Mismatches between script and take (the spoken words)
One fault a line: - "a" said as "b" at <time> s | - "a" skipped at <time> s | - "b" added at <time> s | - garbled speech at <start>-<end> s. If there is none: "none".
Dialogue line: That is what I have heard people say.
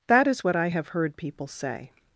none